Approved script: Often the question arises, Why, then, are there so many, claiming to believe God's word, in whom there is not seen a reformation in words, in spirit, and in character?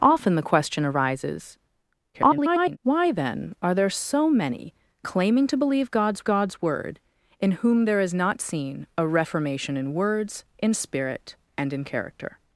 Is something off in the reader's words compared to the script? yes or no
yes